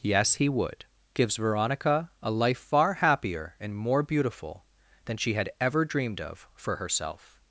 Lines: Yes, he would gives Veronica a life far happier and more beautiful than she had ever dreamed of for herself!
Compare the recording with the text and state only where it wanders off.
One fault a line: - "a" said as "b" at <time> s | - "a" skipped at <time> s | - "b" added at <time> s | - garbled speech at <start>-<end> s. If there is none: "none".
none